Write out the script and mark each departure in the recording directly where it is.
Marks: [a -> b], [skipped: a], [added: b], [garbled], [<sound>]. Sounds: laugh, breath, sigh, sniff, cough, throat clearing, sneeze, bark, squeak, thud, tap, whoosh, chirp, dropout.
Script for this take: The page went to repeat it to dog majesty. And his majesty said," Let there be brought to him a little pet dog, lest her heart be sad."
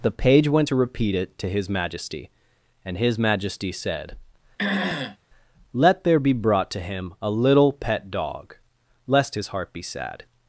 The page went to repeat it to [dog -> his] majesty. And his majesty said," [throat clearing] Let there be brought to him a little pet dog, lest [her -> his] heart be sad."